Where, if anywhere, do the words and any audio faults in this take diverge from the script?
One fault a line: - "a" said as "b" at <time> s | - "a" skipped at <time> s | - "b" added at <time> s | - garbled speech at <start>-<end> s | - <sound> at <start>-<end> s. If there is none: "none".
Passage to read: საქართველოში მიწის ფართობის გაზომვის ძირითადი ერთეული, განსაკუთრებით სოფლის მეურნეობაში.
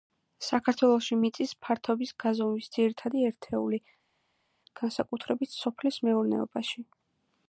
none